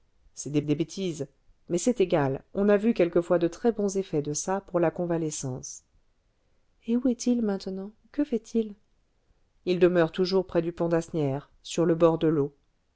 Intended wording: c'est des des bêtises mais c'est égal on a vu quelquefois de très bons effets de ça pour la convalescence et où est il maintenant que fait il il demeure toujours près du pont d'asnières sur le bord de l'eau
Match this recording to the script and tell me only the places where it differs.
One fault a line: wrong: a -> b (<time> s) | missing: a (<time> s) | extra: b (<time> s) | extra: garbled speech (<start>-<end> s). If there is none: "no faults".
no faults